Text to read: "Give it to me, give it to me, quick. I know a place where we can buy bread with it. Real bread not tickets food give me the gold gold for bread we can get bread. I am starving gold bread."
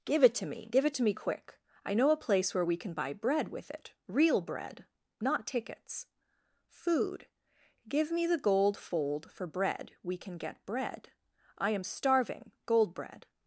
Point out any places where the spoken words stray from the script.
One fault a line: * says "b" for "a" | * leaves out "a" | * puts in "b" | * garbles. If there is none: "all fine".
* says "fold" for "gold"